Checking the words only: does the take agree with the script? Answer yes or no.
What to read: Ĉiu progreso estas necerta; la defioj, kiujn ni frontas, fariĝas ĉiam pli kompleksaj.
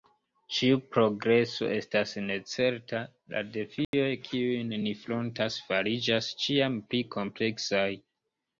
yes